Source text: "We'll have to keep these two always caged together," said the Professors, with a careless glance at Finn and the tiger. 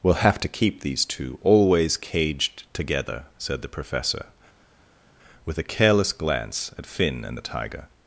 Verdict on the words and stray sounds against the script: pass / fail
fail